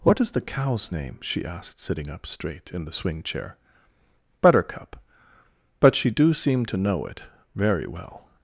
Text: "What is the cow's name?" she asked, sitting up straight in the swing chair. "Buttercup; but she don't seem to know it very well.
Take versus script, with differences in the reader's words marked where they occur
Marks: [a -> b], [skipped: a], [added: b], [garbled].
"What is the cow's name?" she asked, sitting up straight in the swing chair. "Buttercup; but she [don't -> do] seem to know it very well.